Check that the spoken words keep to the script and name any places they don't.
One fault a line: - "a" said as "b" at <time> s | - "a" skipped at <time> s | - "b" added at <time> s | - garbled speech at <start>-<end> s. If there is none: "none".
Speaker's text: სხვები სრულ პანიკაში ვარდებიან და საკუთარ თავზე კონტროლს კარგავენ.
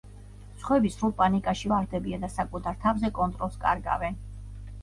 none